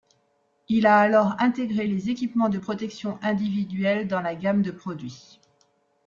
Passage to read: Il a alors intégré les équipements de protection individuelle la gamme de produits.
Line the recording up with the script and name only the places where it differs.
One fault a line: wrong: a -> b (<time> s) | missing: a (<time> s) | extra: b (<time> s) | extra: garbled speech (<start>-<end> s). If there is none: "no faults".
extra: dans (4.1 s)